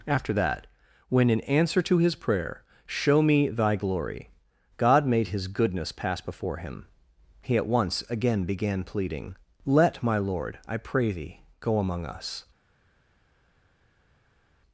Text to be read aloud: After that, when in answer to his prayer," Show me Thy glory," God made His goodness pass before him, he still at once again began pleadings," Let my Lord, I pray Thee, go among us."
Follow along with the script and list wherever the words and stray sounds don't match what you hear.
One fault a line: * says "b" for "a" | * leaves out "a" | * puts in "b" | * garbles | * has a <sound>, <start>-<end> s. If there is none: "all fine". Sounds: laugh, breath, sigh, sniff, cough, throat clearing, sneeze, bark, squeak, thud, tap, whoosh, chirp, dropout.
* leaves out "still"
* says "pleading" for "pleadings"